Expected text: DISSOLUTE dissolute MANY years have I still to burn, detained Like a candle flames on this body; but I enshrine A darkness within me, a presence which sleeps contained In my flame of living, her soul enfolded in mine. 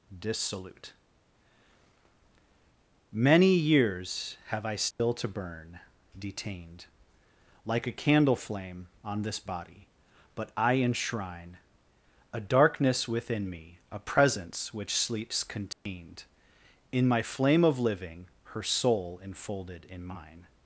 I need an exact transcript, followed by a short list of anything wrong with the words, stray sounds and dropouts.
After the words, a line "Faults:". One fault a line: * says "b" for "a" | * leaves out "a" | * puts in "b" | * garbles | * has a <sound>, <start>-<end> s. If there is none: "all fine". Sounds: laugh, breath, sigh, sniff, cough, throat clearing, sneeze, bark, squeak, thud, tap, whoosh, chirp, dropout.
DISSOLUTE MANY years have I still to burn, detained Like a candle flame on this body; but I enshrine A darkness within me, a presence which sleeps contained In my flame of living, her soul enfolded in mine.
Faults:
* leaves out "dissolute"
* has a dropout, 4.9-5.0 s
* says "flame" for "flames"
* has a dropout, 15.7-15.9 s